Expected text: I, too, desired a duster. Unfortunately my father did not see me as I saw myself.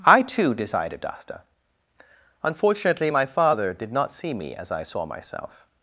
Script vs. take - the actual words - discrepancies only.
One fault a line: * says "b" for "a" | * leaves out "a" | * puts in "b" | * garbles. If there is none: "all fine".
all fine